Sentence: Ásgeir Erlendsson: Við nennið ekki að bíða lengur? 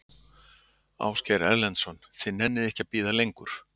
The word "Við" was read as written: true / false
false